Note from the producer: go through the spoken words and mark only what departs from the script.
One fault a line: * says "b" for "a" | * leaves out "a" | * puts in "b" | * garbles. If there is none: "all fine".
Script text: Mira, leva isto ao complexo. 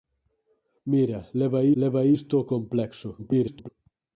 * puts in "leva"
* garbles